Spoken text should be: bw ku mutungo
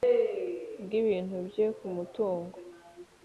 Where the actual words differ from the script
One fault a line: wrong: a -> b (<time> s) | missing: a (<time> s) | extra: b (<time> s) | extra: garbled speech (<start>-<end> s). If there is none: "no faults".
extra: ibintu bye (1.0 s)